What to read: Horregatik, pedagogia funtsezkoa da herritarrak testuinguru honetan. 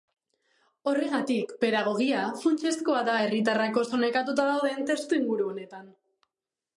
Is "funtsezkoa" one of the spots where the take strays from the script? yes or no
no